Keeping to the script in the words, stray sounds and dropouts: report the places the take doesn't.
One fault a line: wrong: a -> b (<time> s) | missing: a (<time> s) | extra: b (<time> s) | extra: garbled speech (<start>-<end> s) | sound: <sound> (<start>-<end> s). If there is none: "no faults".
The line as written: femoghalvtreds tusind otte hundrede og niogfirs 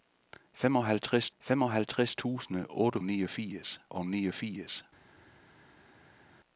extra: femoghalvtreds (1.4 s)
wrong: hundrede -> niogfirs (3.0 s)